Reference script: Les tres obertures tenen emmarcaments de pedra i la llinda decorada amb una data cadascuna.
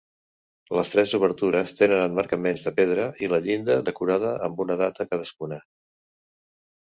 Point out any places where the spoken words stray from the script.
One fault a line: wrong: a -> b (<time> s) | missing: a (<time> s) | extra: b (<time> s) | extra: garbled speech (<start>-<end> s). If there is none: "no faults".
no faults